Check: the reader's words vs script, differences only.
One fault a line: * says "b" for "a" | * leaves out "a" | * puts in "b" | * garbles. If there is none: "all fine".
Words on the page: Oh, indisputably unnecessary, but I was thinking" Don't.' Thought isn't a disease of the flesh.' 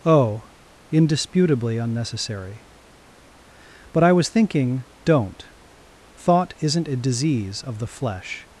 all fine